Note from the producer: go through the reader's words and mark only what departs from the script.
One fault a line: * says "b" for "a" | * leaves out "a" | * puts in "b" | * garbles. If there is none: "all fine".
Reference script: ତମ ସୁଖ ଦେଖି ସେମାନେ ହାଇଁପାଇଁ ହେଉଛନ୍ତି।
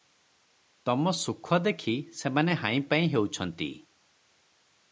all fine